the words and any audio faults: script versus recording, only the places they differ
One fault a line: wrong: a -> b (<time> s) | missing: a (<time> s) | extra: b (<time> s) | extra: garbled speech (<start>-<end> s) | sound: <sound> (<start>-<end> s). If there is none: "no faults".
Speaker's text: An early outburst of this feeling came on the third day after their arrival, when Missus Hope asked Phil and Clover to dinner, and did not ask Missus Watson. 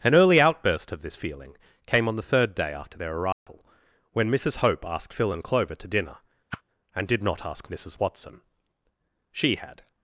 sound: dropout (3.3-3.5 s)
sound: whoosh (6.5-6.6 s)
extra: She had (9.3 s)